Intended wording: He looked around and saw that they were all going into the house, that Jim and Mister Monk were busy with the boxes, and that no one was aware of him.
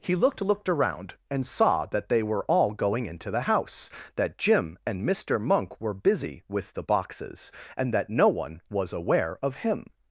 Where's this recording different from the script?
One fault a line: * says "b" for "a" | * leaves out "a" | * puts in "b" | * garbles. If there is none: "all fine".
* puts in "looked"